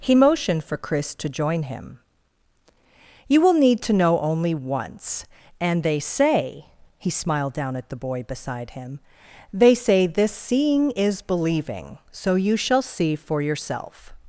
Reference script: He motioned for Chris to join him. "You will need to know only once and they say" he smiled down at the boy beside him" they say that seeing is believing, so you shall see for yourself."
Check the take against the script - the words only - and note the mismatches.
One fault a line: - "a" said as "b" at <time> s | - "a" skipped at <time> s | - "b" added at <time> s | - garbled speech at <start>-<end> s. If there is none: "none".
- "that" said as "this" at 10.1 s